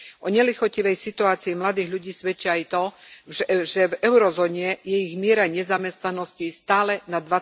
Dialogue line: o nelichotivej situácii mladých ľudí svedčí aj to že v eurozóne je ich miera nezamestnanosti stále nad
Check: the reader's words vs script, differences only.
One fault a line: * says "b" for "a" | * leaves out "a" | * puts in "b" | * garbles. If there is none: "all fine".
all fine